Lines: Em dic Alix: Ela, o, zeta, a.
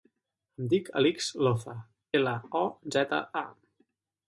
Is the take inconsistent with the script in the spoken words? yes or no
yes